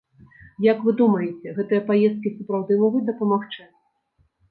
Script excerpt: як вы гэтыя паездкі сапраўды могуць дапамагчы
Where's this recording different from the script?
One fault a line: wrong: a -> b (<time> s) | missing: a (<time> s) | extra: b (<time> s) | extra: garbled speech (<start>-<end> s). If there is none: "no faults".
extra: думаеце (1.0 s)